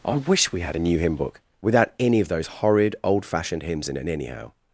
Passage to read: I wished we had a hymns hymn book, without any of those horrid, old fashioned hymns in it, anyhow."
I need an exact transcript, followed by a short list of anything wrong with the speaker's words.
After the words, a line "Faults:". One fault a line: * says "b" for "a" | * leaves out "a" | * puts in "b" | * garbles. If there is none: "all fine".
I wish we had a new hymn book, without any of those horrid, old fashioned hymns in it, anyhow."
Faults:
* says "wish" for "wished"
* says "new" for "hymns"